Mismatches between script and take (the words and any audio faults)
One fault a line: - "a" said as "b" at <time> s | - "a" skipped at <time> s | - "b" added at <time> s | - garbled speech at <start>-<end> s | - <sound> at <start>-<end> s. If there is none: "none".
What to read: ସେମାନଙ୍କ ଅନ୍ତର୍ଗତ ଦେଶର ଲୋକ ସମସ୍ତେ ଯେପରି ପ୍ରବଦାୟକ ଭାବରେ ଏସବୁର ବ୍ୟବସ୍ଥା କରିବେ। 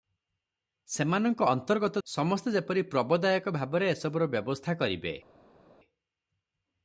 - "ଦେଶର ଲୋକ" skipped at 2.0 s